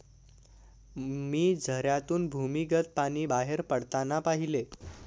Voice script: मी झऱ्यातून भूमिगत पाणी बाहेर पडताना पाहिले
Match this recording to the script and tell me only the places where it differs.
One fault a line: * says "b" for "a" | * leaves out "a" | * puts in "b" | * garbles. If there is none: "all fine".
all fine